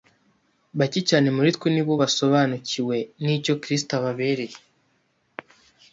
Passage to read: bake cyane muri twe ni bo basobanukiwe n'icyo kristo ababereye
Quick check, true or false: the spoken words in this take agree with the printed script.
true